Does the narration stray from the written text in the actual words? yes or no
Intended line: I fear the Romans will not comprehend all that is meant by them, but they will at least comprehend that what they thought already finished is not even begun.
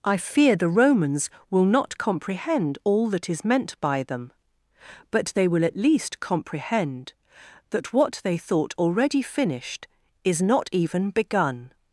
no